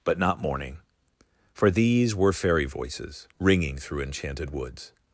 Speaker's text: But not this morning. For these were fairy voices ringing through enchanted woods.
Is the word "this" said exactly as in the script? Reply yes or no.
no